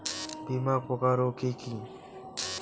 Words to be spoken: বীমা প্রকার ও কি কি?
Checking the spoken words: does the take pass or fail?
pass